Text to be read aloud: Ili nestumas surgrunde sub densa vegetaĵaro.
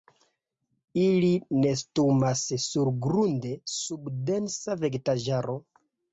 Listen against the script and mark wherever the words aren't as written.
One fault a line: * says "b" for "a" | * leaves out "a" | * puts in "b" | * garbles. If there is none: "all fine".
all fine